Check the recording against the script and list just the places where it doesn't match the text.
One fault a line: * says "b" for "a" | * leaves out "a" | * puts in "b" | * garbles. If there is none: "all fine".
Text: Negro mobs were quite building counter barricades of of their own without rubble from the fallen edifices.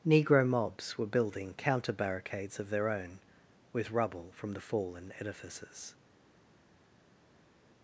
* leaves out "quite"
* leaves out "of"
* says "with" for "without"